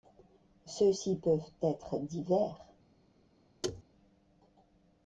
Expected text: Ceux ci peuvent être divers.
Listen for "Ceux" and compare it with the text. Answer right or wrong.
right